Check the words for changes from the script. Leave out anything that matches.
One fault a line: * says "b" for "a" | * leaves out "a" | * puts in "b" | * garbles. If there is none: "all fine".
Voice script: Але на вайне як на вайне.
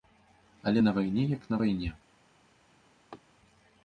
all fine